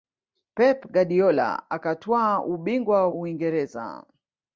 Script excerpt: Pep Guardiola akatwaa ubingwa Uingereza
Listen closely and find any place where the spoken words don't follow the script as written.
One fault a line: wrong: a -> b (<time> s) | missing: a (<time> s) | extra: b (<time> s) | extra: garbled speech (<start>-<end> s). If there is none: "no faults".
no faults